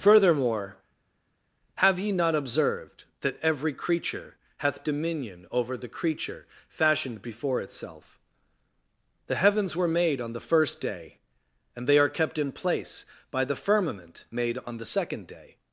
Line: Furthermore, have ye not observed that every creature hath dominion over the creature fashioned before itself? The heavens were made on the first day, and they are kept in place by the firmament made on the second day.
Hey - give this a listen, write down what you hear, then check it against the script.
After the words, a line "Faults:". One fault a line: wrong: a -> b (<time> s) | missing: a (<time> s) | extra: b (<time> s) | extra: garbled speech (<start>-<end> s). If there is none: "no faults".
Furthermore, have ye not observed that every creature hath dominion over the creature fashioned before itself? The heavens were made on the first day, and they are kept in place by the firmament made on the second day.
Faults:
no faults